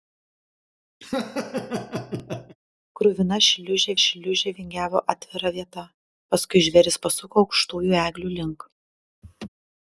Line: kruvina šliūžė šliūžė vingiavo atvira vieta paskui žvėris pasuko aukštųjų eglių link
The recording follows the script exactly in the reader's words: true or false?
true